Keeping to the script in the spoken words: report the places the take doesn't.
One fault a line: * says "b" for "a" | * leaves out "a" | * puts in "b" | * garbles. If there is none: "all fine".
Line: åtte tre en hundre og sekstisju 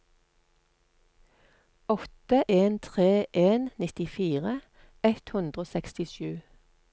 * puts in "en"
* puts in "nittifire ett"